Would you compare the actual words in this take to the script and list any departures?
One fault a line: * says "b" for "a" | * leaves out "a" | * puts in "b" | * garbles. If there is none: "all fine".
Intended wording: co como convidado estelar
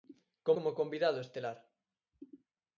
all fine